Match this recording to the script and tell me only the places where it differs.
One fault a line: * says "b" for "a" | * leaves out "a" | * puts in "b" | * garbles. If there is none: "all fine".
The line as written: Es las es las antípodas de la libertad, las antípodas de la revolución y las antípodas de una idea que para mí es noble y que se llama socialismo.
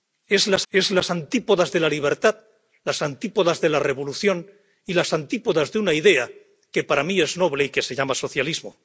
all fine